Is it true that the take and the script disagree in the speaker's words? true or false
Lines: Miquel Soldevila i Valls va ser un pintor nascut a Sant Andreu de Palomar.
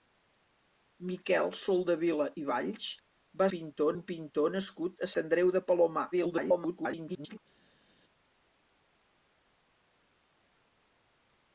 true